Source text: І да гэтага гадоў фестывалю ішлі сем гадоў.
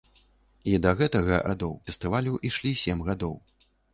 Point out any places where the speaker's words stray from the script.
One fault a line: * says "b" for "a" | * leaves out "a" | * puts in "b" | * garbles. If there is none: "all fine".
all fine